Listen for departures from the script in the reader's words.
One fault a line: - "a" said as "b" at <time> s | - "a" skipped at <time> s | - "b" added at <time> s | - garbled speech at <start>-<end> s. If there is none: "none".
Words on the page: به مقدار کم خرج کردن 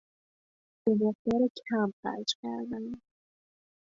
none